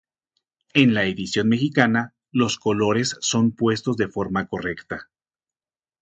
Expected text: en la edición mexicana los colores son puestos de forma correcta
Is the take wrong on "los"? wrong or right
right